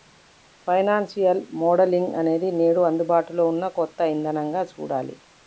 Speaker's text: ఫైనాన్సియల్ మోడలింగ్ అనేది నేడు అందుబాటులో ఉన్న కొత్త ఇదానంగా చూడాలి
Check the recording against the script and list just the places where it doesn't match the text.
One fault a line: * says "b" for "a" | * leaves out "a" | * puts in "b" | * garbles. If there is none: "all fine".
all fine